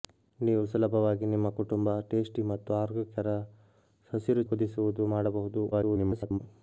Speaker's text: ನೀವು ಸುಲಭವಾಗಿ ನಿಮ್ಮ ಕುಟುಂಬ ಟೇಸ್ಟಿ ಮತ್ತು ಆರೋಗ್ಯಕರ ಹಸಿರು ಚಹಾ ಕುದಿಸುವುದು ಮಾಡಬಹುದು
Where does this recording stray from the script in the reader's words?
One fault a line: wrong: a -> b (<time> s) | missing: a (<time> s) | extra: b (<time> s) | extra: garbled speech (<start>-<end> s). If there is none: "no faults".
missing: ಚಹಾ (4.5 s)
extra: garbled speech (5.7-6.4 s)